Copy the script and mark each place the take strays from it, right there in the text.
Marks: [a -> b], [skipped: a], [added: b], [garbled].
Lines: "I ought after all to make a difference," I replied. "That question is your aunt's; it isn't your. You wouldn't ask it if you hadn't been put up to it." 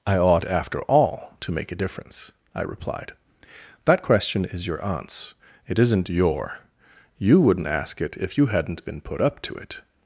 "I ought after all to make a difference," I replied. "That question is your aunt's; it isn't your. You wouldn't ask it if you hadn't been put up to it."